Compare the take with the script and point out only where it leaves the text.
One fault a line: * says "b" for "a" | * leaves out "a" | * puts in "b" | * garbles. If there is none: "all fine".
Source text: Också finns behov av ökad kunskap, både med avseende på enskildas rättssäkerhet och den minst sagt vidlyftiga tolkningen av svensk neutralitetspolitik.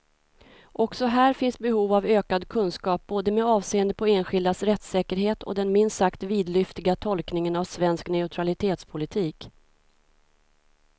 * puts in "här"